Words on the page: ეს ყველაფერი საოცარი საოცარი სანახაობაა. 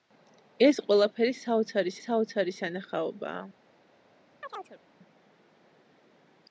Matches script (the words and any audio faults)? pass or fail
fail